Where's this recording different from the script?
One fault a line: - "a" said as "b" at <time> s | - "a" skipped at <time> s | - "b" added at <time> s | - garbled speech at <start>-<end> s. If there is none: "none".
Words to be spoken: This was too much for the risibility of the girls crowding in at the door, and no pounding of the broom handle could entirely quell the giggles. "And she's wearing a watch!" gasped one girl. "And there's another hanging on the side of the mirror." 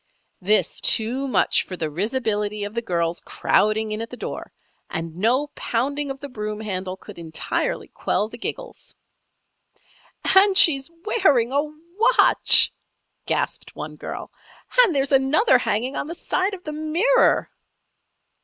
- "was" skipped at 0.8 s